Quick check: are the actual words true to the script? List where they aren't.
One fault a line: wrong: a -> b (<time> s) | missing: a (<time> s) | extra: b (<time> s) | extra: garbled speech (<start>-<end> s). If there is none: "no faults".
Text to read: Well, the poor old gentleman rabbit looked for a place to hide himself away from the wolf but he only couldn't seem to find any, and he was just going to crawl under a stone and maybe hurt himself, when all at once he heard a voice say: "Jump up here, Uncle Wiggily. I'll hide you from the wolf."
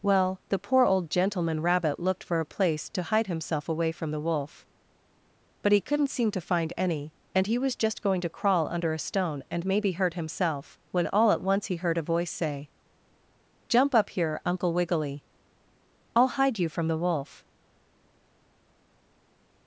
missing: only (5.8 s)